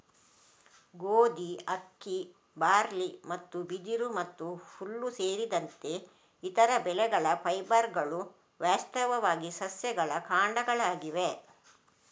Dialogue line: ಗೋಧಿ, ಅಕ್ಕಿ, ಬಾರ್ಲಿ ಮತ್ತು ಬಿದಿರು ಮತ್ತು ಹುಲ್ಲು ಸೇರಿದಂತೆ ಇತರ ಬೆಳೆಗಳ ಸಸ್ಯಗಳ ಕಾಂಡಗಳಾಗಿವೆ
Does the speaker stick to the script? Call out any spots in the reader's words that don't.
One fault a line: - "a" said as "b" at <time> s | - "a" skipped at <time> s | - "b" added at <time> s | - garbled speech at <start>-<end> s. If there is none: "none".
- "ಫೈಬರ್ಗಳು ವಾಸ್ತವವಾಗಿ" added at 7.4 s